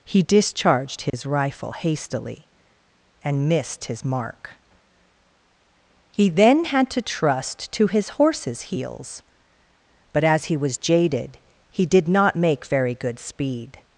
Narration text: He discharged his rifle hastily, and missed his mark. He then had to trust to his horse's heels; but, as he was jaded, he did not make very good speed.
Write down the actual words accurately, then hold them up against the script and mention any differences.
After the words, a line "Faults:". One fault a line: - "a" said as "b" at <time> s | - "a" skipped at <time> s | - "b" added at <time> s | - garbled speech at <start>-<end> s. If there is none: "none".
He discharged his rifle hastily, and missed his mark. He then had to trust to his horse's heels; but, as he was jaded, he did not make very good speed.
Faults:
none